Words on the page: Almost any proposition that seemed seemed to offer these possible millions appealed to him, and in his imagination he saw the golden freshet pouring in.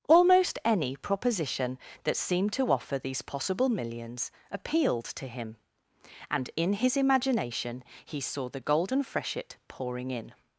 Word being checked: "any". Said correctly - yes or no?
yes